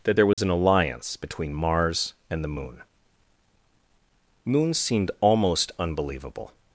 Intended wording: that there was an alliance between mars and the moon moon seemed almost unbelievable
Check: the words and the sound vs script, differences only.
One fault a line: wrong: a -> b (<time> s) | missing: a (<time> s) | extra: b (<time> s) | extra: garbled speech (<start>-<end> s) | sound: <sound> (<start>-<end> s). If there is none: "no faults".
sound: dropout (0.3-0.4 s)